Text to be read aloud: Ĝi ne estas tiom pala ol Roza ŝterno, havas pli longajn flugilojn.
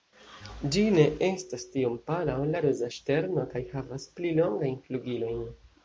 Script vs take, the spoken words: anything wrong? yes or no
yes